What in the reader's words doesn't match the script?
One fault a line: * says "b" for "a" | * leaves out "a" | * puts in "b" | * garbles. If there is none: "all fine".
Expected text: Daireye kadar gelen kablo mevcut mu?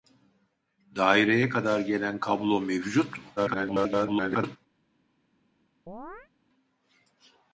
* garbles